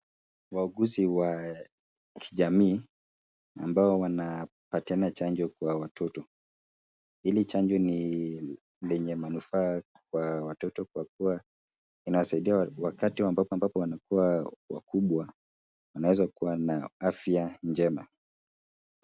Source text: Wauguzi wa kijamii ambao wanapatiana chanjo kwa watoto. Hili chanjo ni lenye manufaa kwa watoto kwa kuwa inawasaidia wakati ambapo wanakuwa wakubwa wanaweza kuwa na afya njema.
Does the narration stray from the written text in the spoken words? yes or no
yes